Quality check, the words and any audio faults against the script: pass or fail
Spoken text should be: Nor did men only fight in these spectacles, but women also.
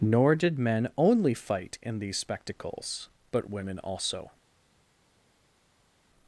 pass